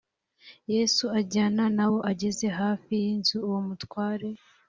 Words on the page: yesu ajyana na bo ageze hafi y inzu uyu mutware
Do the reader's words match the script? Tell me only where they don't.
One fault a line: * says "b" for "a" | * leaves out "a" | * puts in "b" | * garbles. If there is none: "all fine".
* says "uwo" for "uyu"